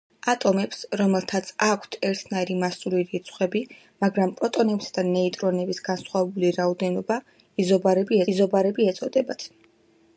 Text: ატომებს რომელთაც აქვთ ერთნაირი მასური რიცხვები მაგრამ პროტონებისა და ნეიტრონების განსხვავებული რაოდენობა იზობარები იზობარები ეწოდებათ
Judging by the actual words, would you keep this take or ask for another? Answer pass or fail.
pass